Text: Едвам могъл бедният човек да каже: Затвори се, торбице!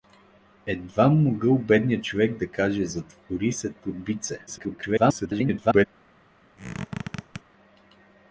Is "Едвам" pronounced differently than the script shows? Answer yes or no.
no